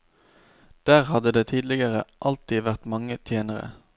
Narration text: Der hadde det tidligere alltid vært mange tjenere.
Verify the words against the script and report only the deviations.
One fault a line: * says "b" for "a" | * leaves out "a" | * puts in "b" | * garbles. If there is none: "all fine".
all fine